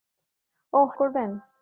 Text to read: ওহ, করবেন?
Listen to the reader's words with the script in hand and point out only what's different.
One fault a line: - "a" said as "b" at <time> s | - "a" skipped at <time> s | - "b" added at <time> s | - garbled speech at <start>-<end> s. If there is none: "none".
none